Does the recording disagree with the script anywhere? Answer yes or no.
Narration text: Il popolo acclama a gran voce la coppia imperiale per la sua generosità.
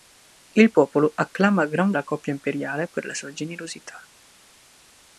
yes